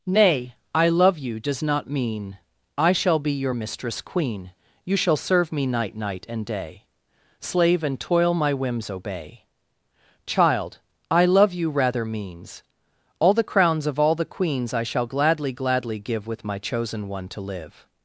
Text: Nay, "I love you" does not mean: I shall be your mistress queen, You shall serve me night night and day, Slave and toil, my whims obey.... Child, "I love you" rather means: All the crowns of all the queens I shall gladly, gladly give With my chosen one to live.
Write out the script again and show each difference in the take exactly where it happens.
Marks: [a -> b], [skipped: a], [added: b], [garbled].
Nay, "I love you" does not mean: I shall be your mistress queen, You shall serve me night night and day, Slave and toil, my whims obey.... Child, "I love you" rather means: All the crowns of all the queens I shall gladly, gladly give With my chosen one to live.